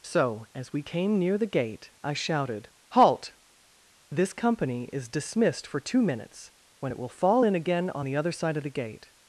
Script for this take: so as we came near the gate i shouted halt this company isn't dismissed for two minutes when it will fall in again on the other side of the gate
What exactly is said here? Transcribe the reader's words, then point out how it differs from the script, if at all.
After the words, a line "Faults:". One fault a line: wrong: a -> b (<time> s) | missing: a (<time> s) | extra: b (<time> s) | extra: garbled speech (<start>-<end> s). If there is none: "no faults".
so as we came near the gate i shouted halt this company is dismissed for two minutes when it will fall in again on the other side of the gate
Faults:
wrong: isn't -> is (4.9 s)